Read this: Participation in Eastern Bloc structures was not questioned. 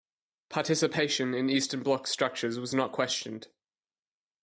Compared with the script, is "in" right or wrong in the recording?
right